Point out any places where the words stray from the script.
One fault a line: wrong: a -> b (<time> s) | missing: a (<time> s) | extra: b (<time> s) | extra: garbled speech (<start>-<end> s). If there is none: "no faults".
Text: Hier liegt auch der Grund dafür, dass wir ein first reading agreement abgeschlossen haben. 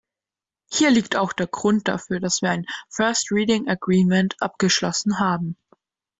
no faults